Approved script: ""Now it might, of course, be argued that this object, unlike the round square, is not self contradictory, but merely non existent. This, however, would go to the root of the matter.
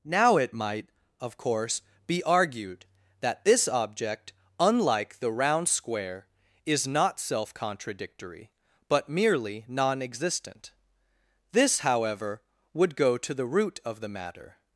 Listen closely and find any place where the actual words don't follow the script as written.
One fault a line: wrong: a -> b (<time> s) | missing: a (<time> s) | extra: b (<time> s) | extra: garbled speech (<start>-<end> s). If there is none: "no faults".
no faults